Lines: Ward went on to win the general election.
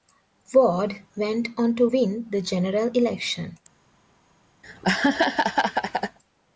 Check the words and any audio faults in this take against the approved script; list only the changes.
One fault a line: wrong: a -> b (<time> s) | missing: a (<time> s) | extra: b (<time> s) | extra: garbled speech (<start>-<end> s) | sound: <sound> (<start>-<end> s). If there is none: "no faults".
sound: laugh (4.6-6.2 s)